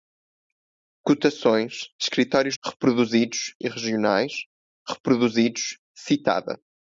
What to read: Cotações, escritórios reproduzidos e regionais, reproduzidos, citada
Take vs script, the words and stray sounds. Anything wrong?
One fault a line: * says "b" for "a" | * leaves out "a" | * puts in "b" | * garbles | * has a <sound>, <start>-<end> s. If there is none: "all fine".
all fine